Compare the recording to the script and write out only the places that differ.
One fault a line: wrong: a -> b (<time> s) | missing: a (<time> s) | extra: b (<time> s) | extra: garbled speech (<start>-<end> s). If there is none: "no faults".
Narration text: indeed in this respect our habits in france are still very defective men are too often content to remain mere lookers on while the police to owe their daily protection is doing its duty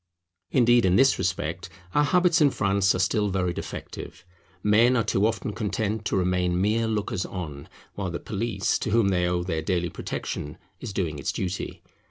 extra: whom they (8.9 s)